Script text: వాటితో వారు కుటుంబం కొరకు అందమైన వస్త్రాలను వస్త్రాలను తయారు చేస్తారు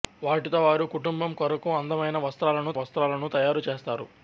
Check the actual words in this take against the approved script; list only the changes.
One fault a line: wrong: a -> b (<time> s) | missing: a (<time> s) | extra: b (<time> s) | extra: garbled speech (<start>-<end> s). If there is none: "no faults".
no faults